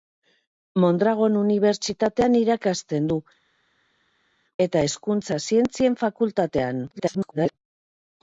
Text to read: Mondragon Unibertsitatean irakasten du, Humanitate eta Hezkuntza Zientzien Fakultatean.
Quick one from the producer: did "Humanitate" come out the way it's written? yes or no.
no